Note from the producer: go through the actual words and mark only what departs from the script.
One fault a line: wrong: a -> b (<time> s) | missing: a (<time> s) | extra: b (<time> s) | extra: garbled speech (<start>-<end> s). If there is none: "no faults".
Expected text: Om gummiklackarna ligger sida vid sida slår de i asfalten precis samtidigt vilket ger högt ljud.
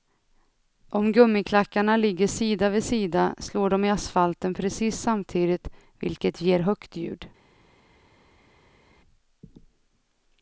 no faults